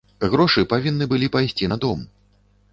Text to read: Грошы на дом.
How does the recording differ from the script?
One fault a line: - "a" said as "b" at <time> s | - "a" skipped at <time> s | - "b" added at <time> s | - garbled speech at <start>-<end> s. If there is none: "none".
- "павінны былі пайсці" added at 0.7 s